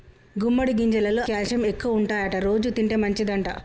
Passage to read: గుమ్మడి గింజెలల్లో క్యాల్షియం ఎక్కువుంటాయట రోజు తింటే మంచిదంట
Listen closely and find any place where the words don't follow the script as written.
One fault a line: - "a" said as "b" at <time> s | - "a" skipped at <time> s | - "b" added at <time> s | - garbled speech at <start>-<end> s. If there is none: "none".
none